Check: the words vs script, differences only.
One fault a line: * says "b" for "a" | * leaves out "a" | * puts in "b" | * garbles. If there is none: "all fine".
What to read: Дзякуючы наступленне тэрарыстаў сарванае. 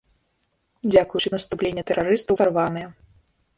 all fine